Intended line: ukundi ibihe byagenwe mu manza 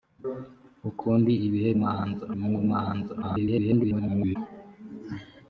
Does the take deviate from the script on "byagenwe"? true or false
true